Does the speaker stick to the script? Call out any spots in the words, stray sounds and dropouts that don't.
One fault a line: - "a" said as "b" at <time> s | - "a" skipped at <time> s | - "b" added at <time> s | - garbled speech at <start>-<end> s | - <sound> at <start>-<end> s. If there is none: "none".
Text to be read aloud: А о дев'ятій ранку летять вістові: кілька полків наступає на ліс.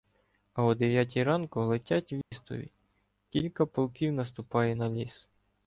- dropout at 2.2-2.3 s